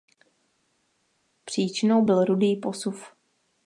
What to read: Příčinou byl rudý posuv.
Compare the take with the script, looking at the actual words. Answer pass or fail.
pass